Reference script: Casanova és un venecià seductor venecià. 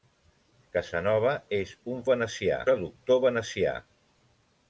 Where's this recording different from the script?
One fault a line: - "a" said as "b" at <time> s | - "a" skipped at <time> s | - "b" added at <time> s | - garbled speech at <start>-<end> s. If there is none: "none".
none